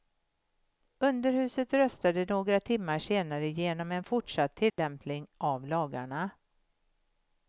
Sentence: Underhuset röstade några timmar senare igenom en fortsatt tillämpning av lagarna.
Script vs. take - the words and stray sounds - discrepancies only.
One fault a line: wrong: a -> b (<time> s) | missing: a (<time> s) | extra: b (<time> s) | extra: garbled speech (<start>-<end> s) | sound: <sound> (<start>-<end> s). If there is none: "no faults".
sound: dropout (4.7-4.8 s)